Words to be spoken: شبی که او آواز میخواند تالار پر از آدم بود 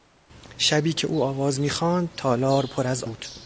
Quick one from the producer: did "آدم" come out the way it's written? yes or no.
no